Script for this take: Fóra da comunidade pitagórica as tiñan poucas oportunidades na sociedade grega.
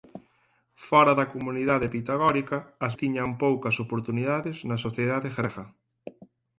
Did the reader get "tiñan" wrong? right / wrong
right